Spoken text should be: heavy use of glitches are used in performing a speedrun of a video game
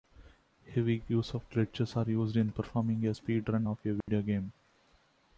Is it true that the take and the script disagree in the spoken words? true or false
false